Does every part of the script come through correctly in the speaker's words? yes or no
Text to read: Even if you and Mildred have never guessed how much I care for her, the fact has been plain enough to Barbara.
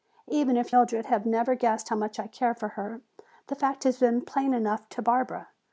no